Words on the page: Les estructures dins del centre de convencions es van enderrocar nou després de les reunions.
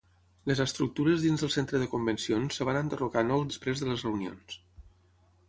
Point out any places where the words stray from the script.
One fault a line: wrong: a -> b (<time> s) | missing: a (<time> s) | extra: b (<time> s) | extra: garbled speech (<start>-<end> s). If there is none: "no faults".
no faults